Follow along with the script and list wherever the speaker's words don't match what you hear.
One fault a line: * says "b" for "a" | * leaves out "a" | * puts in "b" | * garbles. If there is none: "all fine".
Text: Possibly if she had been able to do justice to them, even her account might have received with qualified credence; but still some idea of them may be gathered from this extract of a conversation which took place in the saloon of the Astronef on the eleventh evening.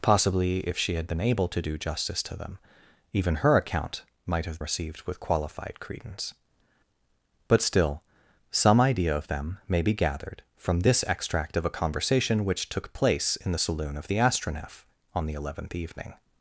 all fine